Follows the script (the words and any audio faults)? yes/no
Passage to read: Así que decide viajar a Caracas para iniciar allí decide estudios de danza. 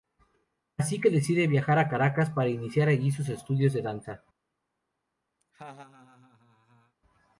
no